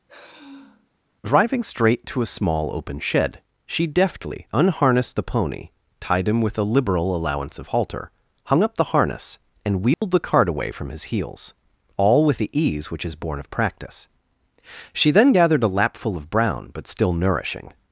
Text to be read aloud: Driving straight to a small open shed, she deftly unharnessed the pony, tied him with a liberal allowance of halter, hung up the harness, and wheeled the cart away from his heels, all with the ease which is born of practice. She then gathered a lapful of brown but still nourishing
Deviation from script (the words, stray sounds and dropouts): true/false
true